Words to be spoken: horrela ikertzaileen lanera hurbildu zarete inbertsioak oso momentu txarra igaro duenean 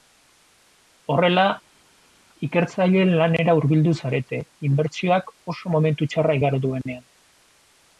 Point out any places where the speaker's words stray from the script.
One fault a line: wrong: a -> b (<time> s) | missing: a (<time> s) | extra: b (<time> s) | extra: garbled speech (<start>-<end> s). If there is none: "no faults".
no faults